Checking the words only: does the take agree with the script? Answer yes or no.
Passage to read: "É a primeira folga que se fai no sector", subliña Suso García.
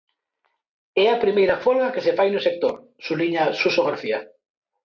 yes